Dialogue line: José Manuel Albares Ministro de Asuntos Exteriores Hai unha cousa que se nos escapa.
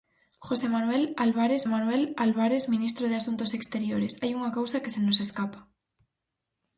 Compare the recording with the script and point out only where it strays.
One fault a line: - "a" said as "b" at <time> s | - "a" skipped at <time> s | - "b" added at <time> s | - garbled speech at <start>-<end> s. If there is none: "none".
- "Manuel Albares" added at 1.7 s